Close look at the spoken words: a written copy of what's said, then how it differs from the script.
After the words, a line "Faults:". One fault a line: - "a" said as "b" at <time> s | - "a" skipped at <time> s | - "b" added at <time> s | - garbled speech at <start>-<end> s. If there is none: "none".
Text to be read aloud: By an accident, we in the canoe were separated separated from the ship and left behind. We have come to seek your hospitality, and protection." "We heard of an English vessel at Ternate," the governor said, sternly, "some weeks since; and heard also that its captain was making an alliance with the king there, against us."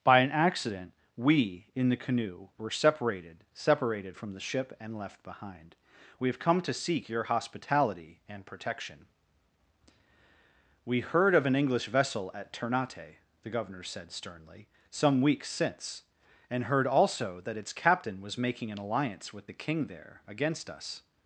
By an accident, we in the canoe were separated separated from the ship and left behind. We have come to seek your hospitality, and protection." "We heard of an English vessel at Ternate," the governor said, sternly, "some weeks since; and heard also that its captain was making an alliance with the king there, against us."
Faults:
none